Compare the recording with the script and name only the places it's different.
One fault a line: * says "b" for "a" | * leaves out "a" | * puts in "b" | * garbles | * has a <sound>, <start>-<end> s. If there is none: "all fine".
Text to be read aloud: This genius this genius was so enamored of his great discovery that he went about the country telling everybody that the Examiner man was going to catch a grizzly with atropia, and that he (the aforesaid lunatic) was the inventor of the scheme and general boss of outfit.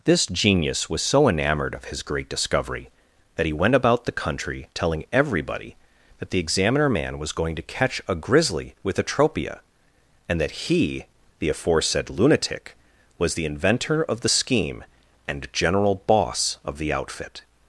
* leaves out "this genius"
* puts in "the"